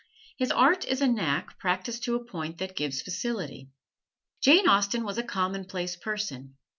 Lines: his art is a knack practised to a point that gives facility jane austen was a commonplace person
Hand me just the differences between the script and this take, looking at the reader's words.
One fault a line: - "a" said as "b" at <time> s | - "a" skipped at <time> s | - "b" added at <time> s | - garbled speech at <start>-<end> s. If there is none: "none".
none